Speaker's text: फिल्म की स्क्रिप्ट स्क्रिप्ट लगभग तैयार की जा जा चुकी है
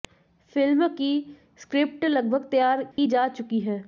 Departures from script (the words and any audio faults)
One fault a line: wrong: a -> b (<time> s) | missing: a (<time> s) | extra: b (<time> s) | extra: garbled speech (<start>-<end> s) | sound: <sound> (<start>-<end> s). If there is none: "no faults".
missing: स्क्रिप्ट (2.0 s)
sound: dropout (2.9-3.0 s)
missing: जा (3.3 s)